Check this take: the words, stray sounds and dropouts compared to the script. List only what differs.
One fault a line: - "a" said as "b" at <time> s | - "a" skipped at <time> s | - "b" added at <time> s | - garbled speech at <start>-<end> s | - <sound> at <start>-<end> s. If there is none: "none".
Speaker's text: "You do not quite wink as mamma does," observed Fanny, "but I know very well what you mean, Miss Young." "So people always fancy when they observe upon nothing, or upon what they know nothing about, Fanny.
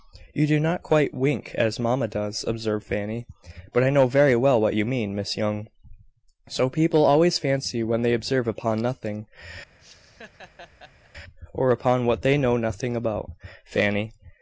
- laugh at 9.8-11.1 s